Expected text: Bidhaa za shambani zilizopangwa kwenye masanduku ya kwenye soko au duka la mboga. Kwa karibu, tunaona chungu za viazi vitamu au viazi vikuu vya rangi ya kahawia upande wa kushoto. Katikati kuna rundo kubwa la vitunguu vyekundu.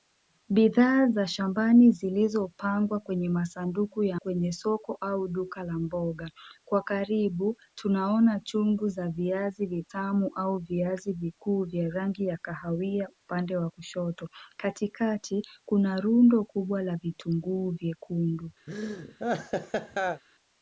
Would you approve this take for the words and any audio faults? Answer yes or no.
no